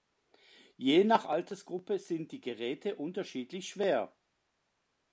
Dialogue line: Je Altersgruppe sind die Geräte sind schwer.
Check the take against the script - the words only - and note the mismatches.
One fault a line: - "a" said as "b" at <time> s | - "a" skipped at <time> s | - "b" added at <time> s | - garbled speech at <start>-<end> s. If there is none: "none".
- "nach" added at 1.0 s
- "sind" said as "unterschiedlich" at 3.0 s